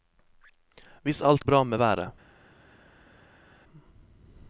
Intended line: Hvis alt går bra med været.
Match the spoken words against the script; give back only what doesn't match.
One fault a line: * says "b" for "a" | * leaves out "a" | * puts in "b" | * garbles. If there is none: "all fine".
* leaves out "går"